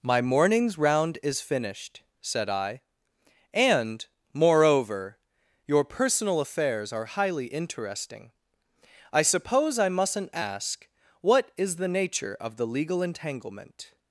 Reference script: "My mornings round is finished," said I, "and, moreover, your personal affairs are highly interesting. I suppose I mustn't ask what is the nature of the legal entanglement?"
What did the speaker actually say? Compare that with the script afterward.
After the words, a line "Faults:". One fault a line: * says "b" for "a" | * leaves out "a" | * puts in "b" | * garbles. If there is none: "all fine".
"My mornings round is finished," said I, "and, moreover, your personal affairs are highly interesting. I suppose I mustn't ask what is the nature of the legal entanglement?"
Faults:
all fine